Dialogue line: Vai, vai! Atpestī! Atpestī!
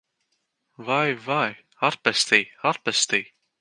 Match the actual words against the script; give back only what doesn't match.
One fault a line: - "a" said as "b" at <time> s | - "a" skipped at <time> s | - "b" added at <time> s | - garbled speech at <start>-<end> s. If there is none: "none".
none